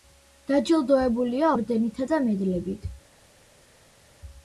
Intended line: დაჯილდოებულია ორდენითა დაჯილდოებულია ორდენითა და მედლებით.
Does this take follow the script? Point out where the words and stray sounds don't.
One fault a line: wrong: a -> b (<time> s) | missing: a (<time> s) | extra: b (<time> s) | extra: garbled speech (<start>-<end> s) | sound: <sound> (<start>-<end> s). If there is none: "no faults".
missing: დაჯილდოებულია ორდენითა (2.1 s)